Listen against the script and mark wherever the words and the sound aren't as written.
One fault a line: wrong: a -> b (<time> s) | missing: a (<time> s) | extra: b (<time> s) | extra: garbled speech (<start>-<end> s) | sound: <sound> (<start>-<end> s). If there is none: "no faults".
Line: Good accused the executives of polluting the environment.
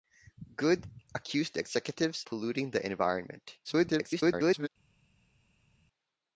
missing: of (2.2 s)
extra: garbled speech (3.6-4.7 s)